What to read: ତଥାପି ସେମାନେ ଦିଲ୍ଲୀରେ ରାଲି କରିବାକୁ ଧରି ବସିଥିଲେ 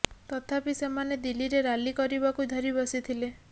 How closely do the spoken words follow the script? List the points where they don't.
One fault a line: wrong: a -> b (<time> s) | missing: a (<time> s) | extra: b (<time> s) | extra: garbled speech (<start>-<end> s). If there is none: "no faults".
no faults